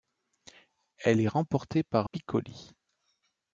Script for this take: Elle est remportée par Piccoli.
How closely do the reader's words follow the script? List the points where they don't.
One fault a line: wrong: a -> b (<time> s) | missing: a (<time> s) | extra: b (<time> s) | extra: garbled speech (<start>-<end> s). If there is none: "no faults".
no faults